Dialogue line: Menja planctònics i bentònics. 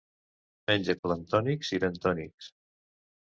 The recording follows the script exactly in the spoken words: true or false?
true